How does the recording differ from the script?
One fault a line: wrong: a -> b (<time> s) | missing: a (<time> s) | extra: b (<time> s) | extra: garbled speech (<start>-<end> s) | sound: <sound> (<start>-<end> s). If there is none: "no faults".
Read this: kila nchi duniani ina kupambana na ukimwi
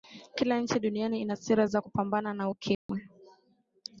extra: sera za (1.4 s)
sound: dropout (2.7-2.9 s)